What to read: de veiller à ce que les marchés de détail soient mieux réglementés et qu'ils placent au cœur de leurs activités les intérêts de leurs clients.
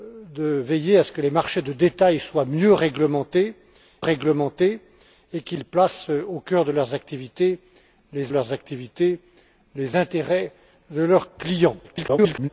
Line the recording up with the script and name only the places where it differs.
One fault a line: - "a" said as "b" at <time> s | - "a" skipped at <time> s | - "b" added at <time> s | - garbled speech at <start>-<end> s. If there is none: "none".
- "réglementés" added at 4.0 s
- "leurs activités les" added at 8.3 s
- garbled speech at 11.8-12.5 s